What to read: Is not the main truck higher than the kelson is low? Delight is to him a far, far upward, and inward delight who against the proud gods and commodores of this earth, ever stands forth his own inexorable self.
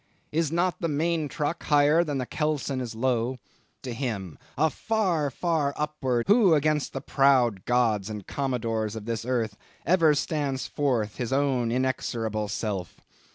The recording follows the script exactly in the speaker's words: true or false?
false